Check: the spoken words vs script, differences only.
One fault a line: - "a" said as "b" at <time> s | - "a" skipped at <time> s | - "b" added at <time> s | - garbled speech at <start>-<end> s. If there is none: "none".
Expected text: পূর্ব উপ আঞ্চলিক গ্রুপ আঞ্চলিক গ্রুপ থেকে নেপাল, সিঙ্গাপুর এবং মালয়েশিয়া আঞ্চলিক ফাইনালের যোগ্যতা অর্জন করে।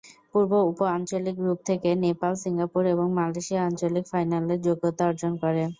- "আঞ্চলিক গ্রুপ" skipped at 1.6 s